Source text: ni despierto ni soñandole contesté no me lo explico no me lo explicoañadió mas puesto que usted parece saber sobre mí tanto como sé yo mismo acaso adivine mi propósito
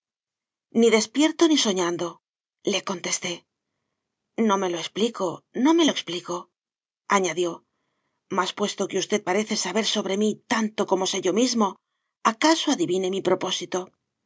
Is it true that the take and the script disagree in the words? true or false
false